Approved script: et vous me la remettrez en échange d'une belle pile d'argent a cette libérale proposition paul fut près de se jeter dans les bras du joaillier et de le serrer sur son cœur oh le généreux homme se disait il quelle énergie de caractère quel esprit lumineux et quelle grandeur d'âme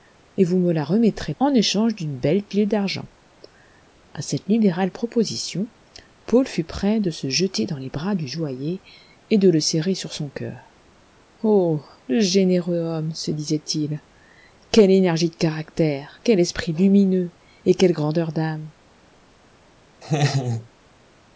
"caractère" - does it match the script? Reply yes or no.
yes